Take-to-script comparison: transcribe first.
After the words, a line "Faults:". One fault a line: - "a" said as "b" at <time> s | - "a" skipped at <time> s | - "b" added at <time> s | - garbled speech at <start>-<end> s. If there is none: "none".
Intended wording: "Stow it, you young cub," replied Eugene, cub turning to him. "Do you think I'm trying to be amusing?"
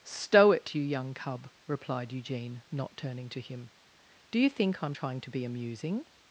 "Stow it, you young cub," replied Eugene, not turning to him. "Do you think I'm trying to be amusing?"
Faults:
- "cub" said as "not" at 2.7 s